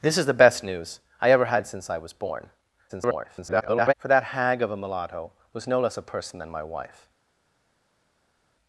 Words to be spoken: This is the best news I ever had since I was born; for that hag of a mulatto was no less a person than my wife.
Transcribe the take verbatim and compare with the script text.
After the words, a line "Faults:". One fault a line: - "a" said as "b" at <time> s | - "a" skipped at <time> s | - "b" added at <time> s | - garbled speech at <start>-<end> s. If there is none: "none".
This is the best news I ever had since I was born; [garbled] for that hag of a mulatto was no less a person than my wife.
Faults:
- garbled speech at 2.9-3.9 s